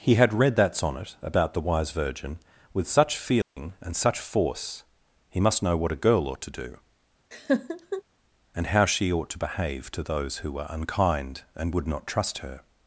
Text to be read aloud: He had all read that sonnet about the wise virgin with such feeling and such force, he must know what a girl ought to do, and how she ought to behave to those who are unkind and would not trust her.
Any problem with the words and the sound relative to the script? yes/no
yes